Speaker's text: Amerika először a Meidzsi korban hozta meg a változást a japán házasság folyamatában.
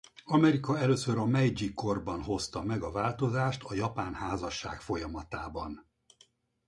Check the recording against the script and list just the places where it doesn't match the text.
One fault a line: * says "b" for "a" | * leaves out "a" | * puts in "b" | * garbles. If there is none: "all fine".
all fine